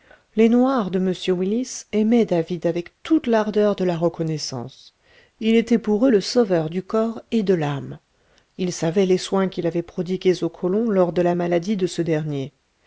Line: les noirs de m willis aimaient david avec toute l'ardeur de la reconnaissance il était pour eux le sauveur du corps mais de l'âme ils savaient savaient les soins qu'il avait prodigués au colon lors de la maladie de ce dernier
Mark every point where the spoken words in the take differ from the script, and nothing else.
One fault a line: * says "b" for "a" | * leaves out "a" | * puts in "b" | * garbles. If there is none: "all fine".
* says "et" for "mais"
* leaves out "savaient"